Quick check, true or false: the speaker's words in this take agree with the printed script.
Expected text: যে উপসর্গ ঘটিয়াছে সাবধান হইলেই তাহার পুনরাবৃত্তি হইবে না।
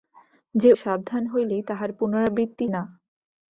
false